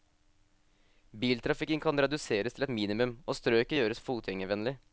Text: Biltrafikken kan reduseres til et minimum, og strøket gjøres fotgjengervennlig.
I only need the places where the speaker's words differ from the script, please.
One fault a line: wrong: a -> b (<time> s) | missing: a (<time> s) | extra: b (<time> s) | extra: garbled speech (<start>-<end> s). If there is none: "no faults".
no faults